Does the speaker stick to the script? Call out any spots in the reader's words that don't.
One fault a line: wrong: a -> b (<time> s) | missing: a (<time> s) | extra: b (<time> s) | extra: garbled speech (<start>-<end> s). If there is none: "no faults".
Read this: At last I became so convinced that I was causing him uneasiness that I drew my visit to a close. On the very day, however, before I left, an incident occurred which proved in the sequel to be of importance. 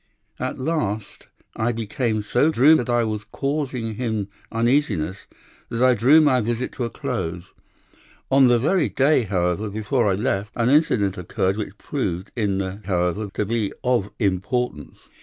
wrong: convinced -> drew (2.5 s)
wrong: sequel -> however (12.8 s)